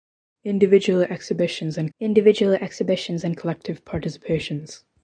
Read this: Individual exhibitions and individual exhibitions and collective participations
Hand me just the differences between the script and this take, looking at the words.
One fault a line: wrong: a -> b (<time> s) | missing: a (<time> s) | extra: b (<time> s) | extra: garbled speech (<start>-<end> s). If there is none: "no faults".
no faults